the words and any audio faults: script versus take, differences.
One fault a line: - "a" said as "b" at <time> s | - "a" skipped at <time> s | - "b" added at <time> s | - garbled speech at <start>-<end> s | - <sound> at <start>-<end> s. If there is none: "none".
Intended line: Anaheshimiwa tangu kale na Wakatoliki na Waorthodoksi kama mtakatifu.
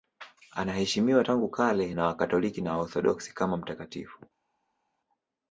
none